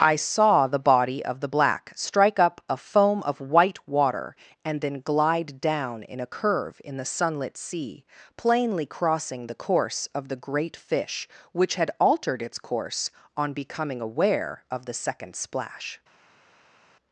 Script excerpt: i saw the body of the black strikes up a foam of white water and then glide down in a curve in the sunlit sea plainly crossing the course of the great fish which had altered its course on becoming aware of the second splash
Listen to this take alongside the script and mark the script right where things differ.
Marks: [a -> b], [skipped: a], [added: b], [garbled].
i saw the body of the black [strikes -> strike] up a foam of white water and then glide down in a curve in the sunlit sea plainly crossing the course of the great fish which had altered its course on becoming aware of the second splash